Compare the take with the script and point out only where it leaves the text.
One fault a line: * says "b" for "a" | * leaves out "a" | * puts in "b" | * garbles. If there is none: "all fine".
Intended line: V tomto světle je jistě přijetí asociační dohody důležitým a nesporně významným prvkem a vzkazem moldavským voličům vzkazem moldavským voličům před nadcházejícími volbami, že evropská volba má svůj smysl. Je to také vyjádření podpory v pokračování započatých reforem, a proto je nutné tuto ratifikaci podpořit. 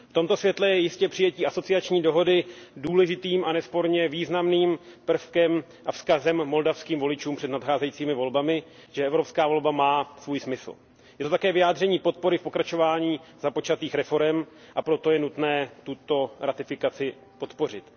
* leaves out "vzkazem moldavským voličům"